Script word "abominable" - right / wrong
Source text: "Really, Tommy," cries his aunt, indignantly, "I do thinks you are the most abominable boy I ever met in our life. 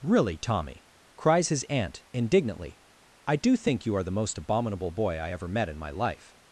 right